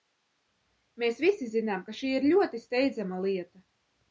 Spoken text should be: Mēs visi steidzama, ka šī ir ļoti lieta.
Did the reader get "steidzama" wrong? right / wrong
wrong